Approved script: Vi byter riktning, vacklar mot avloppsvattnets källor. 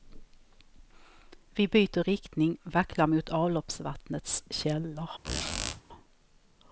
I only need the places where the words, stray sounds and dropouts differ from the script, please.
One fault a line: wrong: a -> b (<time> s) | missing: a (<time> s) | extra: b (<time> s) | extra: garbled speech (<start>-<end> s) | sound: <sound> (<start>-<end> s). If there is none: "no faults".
sound: squeak (5.2-5.8 s)